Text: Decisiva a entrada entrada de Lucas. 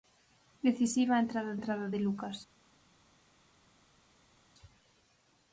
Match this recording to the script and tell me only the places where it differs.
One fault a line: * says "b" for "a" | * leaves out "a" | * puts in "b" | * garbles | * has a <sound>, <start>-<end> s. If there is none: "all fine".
all fine